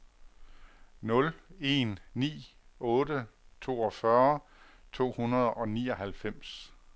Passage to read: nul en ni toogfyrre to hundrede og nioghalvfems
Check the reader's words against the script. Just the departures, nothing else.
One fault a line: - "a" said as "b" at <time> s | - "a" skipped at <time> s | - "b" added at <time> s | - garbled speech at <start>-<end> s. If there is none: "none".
- "otte" added at 2.8 s